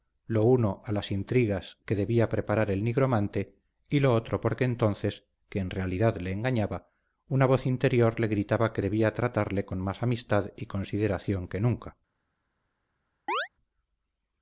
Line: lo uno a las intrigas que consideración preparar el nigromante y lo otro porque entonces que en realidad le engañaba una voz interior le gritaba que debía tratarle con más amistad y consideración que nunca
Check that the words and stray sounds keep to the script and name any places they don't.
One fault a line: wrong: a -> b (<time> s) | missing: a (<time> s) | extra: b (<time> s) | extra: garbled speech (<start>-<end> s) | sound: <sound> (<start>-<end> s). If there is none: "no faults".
wrong: consideración -> debía (2.0 s)
sound: chirp (13.3-13.5 s)